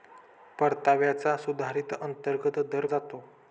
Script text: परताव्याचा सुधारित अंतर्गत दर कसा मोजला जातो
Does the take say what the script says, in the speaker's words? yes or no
no